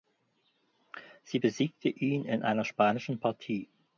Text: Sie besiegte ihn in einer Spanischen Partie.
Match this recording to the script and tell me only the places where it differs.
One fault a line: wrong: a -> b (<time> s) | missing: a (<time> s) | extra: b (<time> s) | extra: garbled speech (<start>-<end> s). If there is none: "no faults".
no faults